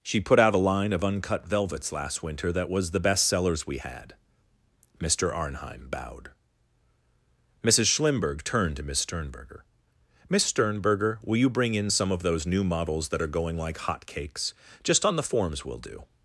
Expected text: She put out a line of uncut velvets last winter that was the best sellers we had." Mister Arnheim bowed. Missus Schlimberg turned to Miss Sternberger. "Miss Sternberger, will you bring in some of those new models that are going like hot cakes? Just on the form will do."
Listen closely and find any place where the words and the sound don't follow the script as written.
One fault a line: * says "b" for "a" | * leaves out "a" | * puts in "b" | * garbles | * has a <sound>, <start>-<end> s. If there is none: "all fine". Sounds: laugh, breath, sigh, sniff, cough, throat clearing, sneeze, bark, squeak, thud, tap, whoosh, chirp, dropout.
* says "forms" for "form"